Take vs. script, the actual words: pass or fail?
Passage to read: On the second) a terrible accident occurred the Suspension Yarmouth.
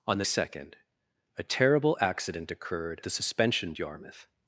pass